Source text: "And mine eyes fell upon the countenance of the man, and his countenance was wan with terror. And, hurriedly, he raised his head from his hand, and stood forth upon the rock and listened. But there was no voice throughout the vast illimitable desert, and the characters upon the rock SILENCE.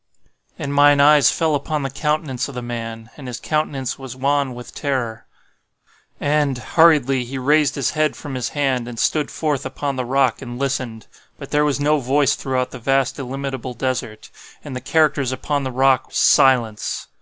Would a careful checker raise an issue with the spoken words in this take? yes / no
no